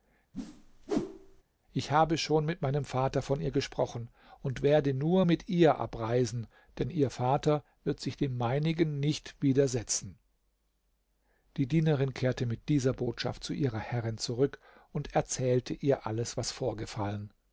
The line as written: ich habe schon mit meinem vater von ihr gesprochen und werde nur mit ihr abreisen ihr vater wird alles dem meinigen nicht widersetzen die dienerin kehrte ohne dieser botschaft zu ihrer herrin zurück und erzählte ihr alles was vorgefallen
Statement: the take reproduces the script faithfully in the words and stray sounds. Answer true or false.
false